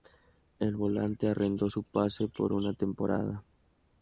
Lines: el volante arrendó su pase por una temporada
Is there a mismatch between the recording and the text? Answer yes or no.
no